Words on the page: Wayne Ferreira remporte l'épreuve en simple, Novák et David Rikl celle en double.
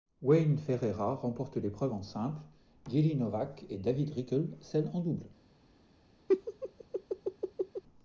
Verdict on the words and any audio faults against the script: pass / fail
fail